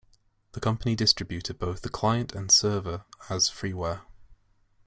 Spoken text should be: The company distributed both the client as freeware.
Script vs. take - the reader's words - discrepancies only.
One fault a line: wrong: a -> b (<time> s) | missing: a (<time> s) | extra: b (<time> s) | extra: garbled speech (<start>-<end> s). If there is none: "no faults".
extra: and server (2.3 s)